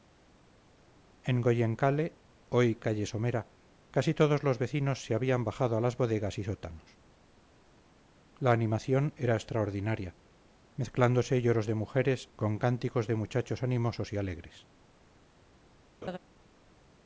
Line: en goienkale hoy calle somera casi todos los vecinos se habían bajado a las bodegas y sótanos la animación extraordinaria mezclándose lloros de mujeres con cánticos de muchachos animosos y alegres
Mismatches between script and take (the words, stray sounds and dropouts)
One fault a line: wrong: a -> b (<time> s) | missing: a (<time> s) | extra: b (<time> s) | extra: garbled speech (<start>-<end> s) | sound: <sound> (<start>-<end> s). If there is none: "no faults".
extra: era (9.2 s)
sound: laugh (16.0-16.2 s)